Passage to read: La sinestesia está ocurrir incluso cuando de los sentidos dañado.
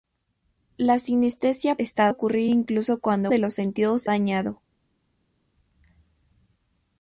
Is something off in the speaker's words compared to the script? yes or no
no